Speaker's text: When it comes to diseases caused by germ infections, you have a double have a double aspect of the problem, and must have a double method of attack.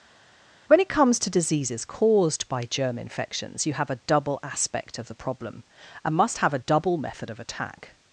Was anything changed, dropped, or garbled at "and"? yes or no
no